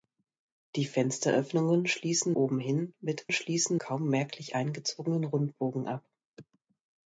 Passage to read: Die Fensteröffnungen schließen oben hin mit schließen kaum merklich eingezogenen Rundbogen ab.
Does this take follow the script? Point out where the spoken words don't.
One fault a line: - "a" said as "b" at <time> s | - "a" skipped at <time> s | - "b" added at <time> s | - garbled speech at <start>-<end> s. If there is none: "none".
none